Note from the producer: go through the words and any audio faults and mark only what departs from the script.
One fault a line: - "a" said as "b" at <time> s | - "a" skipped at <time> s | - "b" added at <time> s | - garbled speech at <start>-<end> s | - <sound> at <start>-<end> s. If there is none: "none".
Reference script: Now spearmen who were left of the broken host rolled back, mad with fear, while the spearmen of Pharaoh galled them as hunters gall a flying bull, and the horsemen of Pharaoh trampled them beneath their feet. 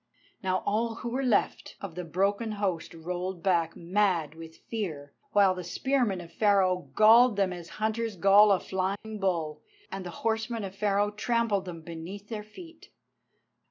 - "spearmen" said as "all" at 0.7 s
- dropout at 9.0-9.0 s